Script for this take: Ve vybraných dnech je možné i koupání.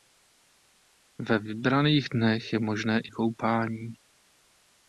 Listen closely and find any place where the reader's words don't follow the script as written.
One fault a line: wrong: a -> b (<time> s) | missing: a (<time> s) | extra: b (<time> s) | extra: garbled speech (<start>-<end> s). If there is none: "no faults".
no faults